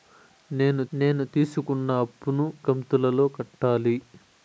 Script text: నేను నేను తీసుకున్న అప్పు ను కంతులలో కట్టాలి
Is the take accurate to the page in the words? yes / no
yes